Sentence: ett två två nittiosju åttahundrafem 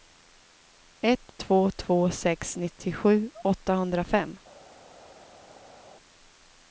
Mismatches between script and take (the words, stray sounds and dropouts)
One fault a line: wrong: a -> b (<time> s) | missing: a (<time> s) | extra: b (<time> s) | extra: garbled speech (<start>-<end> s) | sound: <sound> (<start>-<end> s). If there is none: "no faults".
extra: sex (2.1 s)